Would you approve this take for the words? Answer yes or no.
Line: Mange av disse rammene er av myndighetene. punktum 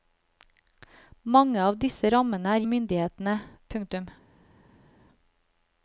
yes